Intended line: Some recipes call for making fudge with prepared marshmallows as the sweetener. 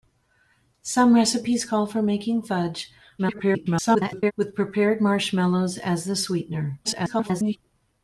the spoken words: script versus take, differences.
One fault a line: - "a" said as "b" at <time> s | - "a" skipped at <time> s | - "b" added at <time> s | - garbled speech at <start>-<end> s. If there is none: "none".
- garbled speech at 3.2-4.3 s
- garbled speech at 6.8-7.6 s